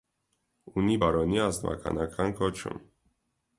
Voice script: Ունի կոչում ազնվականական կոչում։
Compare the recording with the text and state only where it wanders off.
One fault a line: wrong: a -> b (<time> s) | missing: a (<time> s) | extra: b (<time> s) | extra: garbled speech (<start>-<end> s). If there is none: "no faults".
wrong: կոչում -> բարոնի (1.0 s)